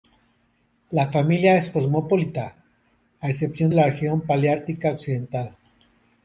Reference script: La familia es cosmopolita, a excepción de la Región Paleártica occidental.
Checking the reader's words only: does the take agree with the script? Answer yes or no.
no